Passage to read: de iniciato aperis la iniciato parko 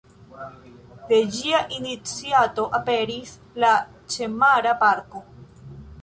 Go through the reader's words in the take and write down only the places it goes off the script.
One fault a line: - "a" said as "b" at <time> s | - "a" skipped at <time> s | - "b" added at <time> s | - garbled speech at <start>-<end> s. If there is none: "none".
- "ĝia" added at 1.3 s
- "iniciato" said as "ĉemara" at 4.2 s